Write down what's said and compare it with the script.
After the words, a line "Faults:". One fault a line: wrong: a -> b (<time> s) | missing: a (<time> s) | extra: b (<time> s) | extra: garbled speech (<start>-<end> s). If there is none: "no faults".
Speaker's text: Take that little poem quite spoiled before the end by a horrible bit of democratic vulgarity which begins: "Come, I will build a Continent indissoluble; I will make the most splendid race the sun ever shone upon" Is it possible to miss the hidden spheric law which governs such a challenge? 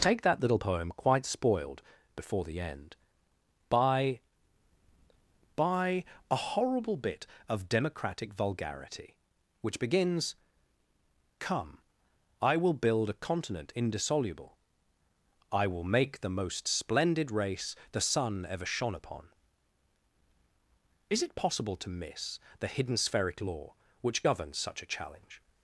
Take that little poem quite spoiled before the end by by a horrible bit of democratic vulgarity which begins: "Come, I will build a Continent indissoluble; I will make the most splendid race the sun ever shone upon" Is it possible to miss the hidden spheric law which governs such a challenge?
Faults:
extra: by (5.5 s)